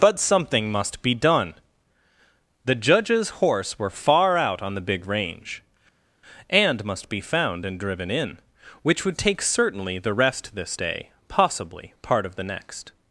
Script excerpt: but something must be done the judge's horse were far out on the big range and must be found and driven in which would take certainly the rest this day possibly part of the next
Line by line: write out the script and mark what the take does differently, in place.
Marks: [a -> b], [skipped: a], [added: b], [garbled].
but something must be done the judge's horse were far out on the big range and must be found and driven in which would take certainly the rest this day possibly part of the next